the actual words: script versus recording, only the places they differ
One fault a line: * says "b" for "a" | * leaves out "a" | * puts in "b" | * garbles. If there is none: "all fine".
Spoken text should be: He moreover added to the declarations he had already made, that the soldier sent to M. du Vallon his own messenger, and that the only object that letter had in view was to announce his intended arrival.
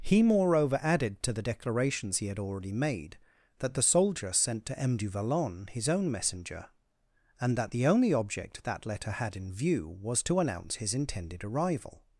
all fine